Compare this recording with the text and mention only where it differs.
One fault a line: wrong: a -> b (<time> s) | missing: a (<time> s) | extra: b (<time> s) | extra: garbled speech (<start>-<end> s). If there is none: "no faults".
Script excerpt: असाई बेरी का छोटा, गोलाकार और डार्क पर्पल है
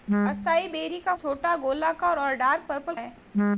no faults